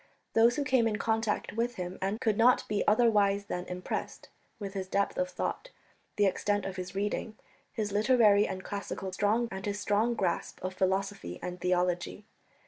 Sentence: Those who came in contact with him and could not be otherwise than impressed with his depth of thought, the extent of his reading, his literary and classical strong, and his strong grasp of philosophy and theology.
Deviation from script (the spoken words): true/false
false